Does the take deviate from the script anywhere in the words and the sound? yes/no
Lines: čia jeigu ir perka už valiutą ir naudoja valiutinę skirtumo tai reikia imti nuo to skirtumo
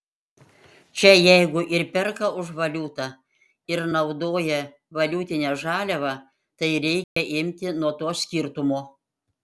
yes